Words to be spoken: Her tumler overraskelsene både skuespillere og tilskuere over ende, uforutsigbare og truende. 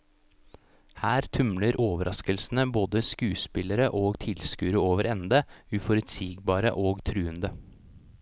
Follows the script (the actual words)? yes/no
yes